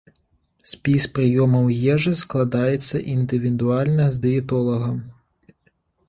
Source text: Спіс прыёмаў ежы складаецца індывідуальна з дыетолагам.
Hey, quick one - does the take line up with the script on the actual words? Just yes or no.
yes